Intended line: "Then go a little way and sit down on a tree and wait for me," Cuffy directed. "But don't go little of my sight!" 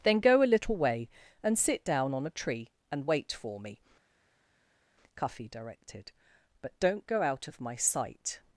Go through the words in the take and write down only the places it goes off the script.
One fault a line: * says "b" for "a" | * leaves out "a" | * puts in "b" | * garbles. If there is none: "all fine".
* says "out" for "little"